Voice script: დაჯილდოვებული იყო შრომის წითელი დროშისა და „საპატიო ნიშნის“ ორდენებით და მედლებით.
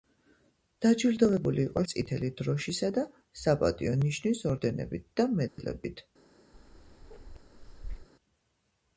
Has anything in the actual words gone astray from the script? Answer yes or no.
yes